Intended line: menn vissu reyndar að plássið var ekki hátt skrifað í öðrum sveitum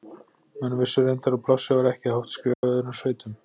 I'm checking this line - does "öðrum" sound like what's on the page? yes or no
yes